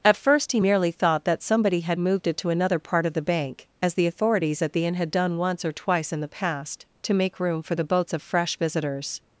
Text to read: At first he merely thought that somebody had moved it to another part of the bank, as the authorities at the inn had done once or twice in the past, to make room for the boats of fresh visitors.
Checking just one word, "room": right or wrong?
right